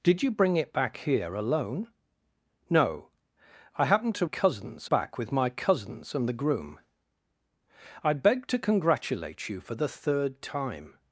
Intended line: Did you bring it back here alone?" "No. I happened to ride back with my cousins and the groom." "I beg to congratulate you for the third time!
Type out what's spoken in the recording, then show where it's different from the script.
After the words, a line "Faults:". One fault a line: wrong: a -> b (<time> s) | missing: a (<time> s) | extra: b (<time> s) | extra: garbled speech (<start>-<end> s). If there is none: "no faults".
Did you bring it back here alone?" "No. I happened to cousins back with my cousins and the groom." "I beg to congratulate you for the third time!
Faults:
wrong: ride -> cousins (4.2 s)